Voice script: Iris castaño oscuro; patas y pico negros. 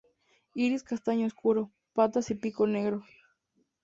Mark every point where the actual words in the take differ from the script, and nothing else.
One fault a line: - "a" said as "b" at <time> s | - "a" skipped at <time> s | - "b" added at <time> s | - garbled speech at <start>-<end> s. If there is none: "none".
none